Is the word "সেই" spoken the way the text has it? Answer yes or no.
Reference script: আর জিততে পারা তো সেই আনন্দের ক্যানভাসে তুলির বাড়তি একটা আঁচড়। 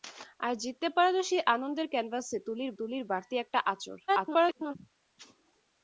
yes